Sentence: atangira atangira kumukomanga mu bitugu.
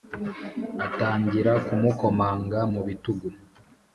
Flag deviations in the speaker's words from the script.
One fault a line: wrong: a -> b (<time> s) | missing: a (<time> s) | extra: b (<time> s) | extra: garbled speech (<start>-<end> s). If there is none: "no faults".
missing: atangira (1.5 s)